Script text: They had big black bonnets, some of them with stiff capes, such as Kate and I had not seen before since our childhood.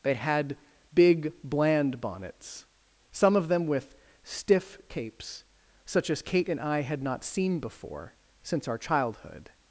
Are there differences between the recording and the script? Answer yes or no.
yes